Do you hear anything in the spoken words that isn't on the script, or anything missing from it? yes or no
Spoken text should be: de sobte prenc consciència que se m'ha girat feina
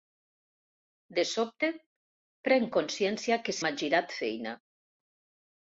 yes